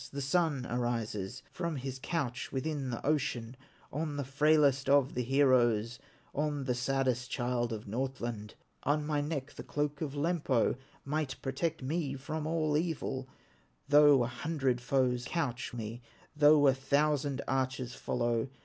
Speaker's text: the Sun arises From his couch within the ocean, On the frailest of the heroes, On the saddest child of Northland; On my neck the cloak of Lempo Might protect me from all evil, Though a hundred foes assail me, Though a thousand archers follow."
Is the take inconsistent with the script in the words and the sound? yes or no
yes